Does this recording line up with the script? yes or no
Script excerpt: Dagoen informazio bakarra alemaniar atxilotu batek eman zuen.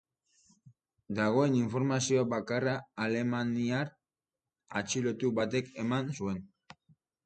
yes